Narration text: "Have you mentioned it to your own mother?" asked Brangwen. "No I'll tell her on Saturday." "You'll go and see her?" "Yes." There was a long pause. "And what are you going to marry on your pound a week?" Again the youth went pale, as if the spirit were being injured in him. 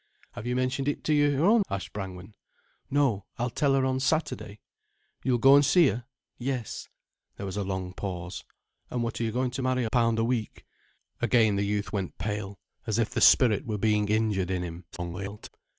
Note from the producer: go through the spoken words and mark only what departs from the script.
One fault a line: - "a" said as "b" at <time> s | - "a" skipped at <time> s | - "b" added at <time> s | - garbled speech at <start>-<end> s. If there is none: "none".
- "mother" skipped at 1.6 s
- "on your" skipped at 9.9 s
- garbled speech at 14.9-15.5 s